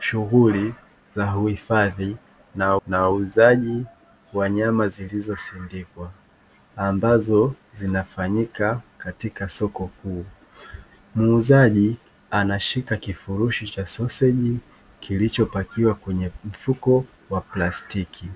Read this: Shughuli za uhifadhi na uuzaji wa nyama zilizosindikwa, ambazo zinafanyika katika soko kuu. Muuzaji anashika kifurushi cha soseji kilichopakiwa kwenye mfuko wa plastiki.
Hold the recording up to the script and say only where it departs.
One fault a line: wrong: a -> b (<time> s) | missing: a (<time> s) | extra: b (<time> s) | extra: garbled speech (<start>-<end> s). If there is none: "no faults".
extra: na (2.9 s)